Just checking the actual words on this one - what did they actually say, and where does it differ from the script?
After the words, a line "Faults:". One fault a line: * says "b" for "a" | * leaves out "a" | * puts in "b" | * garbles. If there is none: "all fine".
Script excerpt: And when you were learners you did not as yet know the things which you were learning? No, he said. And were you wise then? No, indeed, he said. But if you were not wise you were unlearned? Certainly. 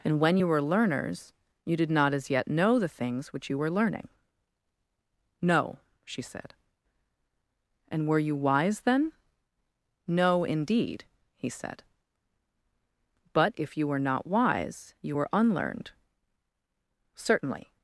And when you were learners you did not as yet know the things which you were learning? No, she said. And were you wise then? No, indeed, he said. But if you were not wise you were unlearned? Certainly.
Faults:
* says "she" for "he"